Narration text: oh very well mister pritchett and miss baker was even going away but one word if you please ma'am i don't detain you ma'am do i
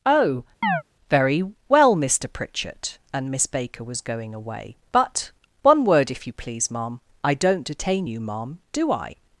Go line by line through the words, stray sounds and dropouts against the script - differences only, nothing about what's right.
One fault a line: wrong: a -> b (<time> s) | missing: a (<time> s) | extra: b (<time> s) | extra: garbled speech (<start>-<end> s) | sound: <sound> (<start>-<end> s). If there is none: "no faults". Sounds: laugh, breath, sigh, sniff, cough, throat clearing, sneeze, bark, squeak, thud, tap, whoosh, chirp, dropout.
sound: chirp (0.6-0.8 s)
missing: even (4.0 s)